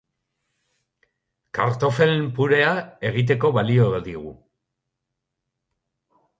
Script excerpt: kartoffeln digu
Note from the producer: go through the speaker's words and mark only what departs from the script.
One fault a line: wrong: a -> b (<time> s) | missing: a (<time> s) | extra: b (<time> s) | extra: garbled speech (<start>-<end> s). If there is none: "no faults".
extra: purea egiteko balio (2.4 s)